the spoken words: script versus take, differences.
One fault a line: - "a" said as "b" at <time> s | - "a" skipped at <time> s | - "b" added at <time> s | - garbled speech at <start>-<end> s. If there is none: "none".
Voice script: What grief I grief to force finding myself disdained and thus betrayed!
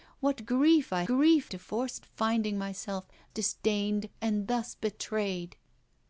none